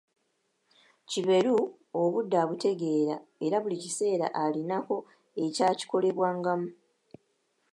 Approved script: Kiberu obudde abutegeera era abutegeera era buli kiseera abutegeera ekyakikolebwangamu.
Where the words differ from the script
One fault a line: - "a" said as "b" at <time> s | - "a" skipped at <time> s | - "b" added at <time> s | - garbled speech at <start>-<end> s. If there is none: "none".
- "abutegeera era" skipped at 3.6 s
- "abutegeera" said as "alinako" at 4.4 s